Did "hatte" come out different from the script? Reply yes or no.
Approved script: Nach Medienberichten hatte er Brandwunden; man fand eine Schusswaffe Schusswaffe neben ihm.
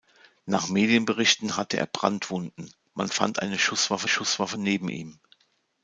no